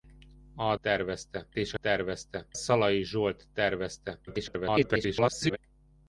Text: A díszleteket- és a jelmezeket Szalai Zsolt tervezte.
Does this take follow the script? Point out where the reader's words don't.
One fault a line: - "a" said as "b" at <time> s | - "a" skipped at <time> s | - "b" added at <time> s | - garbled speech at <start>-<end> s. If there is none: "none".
- "díszleteket" said as "tervezte" at 0.8 s
- "jelmezeket" said as "tervezte" at 1.8 s
- garbled speech at 4.3-5.6 s